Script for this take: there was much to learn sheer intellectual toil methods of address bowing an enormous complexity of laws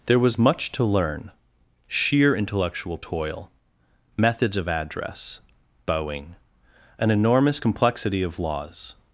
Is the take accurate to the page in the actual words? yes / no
yes